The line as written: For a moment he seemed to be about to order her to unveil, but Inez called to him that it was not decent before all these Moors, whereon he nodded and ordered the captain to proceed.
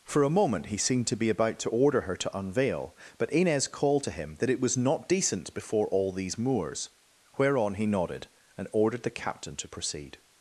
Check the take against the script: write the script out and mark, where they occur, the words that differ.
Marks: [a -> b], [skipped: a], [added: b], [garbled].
For a moment he seemed to be about to order her to unveil, but Inez called to him that it was not decent before all these Moors, whereon he nodded and ordered the captain to proceed.